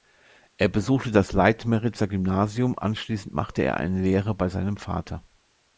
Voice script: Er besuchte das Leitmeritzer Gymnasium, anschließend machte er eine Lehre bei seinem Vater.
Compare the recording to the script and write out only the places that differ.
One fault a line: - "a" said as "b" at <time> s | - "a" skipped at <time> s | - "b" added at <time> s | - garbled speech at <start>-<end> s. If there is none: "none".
none